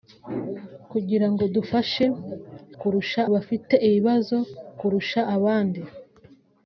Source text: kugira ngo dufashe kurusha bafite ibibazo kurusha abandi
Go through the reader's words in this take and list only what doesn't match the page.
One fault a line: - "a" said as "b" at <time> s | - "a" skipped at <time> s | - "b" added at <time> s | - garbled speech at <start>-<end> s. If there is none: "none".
none